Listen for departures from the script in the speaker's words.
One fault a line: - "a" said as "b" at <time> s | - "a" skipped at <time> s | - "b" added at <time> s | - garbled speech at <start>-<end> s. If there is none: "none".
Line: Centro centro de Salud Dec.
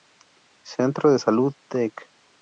- "centro" skipped at 1.1 s